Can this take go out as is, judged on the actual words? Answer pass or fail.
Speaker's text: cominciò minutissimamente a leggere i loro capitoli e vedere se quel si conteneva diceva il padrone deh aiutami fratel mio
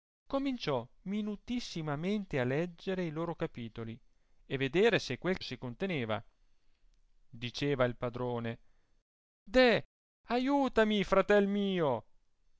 pass